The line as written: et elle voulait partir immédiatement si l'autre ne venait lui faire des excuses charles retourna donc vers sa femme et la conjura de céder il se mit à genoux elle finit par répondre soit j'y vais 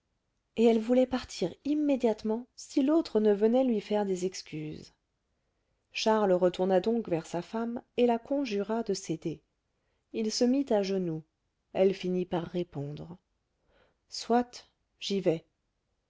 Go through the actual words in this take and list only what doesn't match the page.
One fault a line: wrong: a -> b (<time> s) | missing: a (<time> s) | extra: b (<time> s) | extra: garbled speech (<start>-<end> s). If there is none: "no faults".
no faults